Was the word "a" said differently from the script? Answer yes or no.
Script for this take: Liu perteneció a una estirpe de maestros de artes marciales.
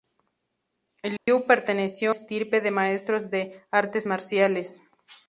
yes